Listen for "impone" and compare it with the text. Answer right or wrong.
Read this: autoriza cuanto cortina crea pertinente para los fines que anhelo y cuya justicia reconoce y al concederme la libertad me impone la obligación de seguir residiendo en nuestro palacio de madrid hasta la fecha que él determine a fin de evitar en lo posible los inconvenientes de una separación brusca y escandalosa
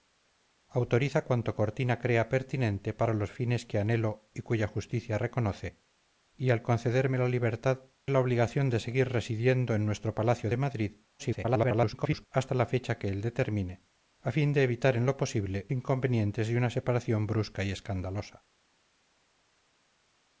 wrong